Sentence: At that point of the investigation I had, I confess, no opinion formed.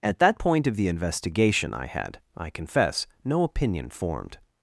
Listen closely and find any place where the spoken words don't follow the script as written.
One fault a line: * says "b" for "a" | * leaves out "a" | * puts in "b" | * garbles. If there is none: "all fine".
all fine